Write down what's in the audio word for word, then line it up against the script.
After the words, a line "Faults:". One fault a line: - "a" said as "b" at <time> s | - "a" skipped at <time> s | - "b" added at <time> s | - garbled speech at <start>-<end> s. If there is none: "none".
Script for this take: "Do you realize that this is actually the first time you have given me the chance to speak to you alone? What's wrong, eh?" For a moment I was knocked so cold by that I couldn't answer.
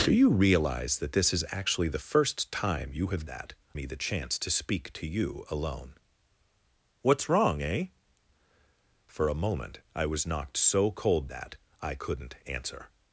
"Do you realize that this is actually the first time you have that me the chance to speak to you alone? What's wrong, eh?" For a moment I was knocked so cold that I couldn't answer.
Faults:
- "given" said as "that" at 3.2 s
- "by" skipped at 11.3 s